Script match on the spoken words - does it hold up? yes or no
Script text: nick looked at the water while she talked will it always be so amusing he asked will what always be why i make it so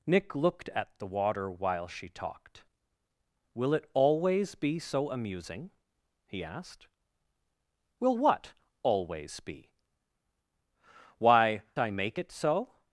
yes